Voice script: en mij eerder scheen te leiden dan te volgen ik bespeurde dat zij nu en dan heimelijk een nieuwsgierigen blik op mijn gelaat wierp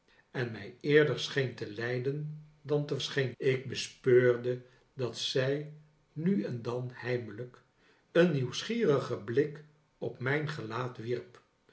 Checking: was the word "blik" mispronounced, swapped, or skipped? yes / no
no